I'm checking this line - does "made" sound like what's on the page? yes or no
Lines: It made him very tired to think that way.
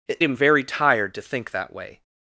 no